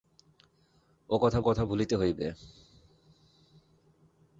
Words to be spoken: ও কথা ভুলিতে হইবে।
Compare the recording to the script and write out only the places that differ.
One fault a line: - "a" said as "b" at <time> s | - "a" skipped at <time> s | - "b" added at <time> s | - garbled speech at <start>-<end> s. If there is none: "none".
- "কথা" added at 1.4 s